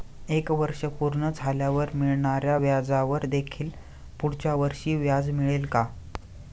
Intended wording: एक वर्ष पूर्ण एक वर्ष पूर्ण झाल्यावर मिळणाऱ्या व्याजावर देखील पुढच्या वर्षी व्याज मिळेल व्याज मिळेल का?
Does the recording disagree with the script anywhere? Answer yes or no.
yes